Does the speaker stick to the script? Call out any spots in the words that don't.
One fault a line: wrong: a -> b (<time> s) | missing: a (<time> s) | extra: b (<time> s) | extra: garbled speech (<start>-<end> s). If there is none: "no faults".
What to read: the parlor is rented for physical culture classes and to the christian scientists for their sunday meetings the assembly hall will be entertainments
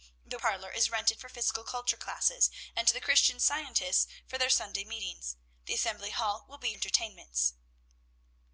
no faults